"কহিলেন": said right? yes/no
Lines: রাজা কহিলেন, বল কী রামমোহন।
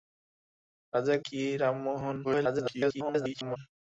no